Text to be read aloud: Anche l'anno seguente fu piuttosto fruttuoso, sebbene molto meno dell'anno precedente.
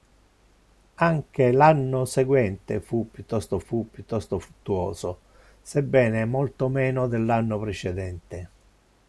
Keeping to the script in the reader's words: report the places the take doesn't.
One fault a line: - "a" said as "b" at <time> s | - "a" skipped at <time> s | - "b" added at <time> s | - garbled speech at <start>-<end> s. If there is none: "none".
- "fu piuttosto" added at 3.6 s